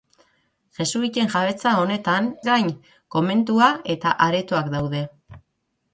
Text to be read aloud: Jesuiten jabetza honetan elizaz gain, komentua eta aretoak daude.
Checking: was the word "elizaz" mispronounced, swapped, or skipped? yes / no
yes